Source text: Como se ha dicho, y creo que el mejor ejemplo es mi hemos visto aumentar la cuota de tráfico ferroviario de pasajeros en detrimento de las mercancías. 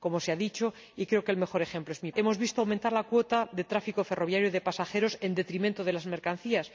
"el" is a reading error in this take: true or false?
false